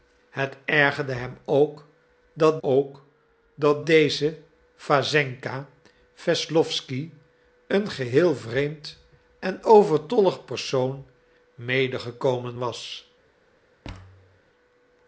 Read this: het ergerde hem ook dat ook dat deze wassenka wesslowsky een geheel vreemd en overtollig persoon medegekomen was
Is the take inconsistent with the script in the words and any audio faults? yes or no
yes